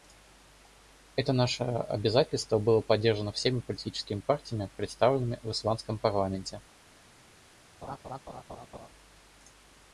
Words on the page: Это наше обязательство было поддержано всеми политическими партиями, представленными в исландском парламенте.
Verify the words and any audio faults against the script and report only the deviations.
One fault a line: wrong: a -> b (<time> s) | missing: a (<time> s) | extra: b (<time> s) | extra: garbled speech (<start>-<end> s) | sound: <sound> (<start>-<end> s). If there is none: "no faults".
sound: laugh (7.8-8.9 s)